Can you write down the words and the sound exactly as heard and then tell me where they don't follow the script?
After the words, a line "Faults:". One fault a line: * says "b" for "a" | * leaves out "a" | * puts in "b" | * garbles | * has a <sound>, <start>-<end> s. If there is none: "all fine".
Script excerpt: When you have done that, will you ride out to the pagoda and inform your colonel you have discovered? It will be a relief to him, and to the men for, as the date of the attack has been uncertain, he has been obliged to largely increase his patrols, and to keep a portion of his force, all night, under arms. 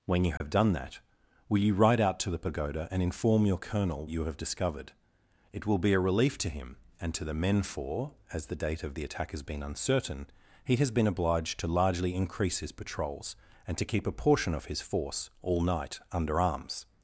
When you have done that, will you ride out to the pagoda and inform your colonel you have discovered? It will be a relief to him, and to the men for, as the date of the attack has been uncertain, he has been obliged to largely increase his patrols, and to keep a portion of his force, all night, under arms.
Faults:
* has a dropout, 0.4-0.4 s